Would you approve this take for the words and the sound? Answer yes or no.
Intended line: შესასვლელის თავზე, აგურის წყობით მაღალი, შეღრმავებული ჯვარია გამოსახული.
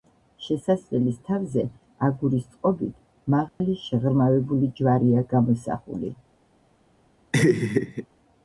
no